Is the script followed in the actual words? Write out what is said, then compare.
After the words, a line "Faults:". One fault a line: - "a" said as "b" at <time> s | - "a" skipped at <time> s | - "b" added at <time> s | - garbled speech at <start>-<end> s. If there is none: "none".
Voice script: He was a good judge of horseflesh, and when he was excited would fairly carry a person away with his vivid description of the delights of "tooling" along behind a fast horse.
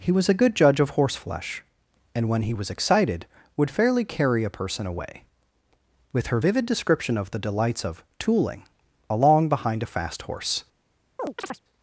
He was a good judge of horseflesh, and when he was excited would fairly carry a person away with her vivid description of the delights of "tooling" along behind a fast horse.
Faults:
- "his" said as "her" at 6.3 s